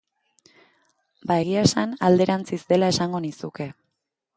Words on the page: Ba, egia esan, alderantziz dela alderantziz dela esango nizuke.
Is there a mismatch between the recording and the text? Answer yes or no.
yes